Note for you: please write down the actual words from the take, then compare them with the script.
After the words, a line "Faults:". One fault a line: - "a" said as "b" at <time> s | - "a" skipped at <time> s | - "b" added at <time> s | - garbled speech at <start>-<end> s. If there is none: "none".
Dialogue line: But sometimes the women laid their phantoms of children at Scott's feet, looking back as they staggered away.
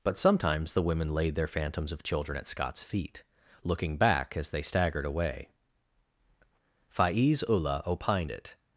But sometimes the women laid their phantoms of children at Scott's feet, looking back as they staggered away. Faiz Ullah opined it
Faults:
- "Faiz Ullah opined it" added at 6.9 s